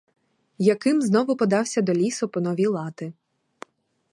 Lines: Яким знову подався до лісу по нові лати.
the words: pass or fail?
pass